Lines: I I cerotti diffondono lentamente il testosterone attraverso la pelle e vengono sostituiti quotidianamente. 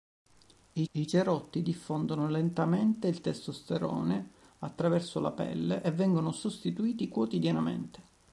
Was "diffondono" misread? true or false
false